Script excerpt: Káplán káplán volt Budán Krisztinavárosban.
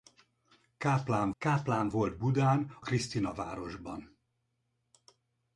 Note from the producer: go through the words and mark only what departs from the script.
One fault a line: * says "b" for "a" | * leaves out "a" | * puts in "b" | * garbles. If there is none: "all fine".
all fine